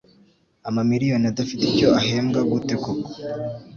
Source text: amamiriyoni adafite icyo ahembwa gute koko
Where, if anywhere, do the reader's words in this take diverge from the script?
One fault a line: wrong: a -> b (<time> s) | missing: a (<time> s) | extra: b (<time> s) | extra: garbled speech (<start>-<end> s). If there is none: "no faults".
no faults